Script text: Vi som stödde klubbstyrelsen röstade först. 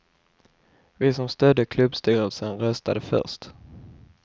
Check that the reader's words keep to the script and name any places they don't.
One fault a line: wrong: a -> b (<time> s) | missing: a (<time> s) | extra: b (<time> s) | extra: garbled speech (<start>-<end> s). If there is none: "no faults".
no faults